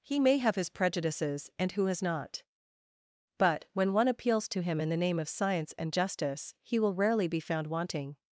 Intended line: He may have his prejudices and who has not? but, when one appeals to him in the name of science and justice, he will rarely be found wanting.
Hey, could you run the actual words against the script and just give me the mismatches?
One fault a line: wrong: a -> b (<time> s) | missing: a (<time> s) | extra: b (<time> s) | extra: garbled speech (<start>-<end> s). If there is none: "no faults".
no faults